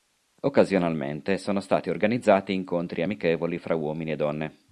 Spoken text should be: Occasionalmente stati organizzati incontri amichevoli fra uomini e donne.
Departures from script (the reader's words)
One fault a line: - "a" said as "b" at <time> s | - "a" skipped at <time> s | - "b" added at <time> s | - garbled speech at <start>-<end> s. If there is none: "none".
- "sono" added at 1.4 s